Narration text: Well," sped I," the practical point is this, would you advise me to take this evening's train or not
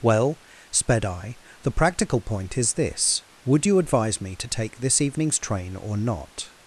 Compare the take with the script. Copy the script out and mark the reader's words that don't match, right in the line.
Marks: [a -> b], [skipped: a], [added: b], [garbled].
Well," sped I," the practical point is this, would you advise me to take this evening's train or not